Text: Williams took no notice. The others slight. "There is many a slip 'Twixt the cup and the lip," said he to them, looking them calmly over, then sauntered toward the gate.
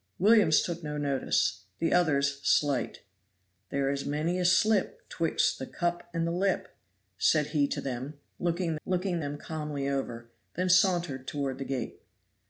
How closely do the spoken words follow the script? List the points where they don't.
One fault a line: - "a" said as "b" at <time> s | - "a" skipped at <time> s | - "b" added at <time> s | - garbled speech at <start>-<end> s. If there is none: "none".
- "looking" added at 8.8 s